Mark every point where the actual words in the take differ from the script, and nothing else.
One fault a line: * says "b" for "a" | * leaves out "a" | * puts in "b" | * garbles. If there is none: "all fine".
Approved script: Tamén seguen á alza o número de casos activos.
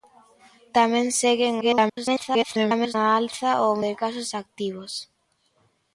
* garbles
* leaves out "número"